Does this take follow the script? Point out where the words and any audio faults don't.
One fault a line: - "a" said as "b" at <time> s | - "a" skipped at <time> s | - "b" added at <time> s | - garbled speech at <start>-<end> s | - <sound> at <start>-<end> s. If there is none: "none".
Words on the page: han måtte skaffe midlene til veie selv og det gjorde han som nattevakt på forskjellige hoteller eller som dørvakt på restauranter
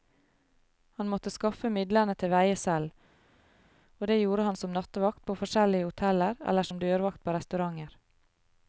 none